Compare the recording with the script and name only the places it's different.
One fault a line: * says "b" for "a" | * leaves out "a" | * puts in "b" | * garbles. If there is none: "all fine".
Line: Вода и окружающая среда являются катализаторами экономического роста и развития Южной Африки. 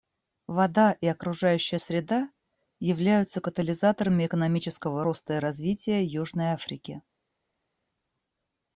all fine